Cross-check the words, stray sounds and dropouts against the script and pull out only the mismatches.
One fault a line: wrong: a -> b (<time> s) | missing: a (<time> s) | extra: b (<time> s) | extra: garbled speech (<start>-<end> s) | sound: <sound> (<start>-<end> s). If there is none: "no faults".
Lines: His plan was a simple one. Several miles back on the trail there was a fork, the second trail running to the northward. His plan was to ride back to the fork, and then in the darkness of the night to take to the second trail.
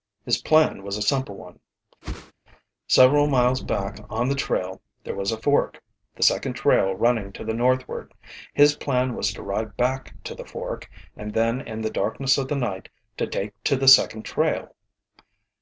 sound: whoosh (2.0-2.3 s)